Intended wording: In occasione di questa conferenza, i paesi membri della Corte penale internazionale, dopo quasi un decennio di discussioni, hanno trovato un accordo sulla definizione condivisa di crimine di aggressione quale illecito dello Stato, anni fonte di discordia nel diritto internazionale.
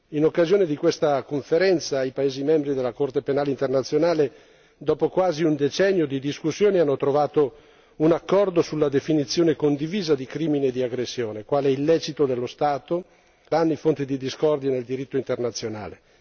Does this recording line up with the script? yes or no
yes